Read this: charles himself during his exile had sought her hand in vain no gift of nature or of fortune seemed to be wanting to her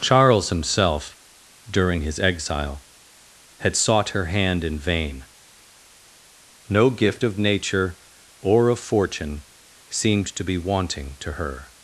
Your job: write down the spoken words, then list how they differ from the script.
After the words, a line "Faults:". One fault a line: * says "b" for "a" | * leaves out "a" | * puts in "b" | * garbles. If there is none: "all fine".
charles himself during his exile had sought her hand in vain no gift of nature or of fortune seemed to be wanting to her
Faults:
all fine